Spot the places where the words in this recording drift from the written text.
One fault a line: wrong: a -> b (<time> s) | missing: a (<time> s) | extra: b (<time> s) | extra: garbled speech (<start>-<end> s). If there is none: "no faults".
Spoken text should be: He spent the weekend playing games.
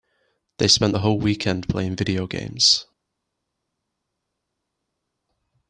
wrong: He -> They (0.6 s)
extra: whole (1.0 s)
extra: video (2.0 s)